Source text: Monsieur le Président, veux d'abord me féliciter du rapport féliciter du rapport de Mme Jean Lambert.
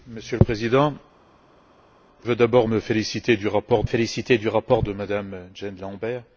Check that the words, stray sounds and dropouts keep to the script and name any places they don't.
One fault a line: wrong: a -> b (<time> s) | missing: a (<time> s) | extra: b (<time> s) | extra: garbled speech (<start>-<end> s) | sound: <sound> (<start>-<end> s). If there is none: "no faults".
no faults